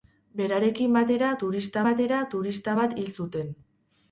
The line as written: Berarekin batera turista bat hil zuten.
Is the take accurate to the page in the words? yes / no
no